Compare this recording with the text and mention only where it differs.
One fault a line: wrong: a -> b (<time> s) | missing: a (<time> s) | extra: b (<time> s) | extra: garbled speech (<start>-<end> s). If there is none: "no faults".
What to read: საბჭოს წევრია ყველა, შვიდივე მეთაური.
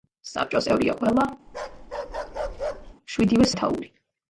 no faults